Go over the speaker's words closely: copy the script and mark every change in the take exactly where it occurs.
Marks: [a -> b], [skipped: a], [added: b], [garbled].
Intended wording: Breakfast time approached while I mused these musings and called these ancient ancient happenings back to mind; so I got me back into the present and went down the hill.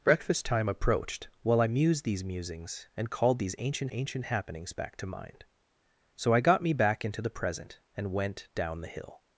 Breakfast time approached while I mused these musings and called these ancient ancient happenings back to mind; so I got me back into the present and went down the hill.